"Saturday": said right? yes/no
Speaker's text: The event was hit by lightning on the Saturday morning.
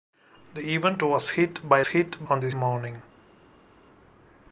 no